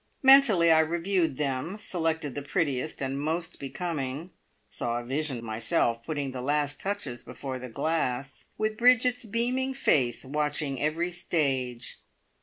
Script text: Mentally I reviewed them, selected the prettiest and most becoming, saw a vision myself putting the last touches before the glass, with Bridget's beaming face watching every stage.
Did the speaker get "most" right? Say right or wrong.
right